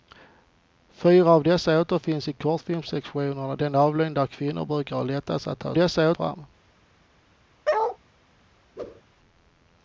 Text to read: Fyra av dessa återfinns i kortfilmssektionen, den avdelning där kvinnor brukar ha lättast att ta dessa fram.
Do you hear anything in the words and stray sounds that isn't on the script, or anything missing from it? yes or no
yes